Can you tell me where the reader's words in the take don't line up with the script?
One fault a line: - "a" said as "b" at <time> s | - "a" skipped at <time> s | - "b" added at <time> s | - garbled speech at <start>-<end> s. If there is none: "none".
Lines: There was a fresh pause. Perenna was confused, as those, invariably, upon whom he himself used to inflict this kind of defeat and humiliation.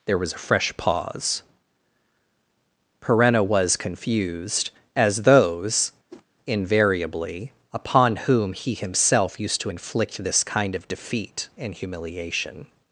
none